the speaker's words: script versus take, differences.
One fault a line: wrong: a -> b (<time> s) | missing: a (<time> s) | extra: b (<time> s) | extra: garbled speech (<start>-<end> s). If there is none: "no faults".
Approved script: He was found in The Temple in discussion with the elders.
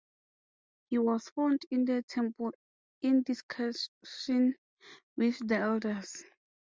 no faults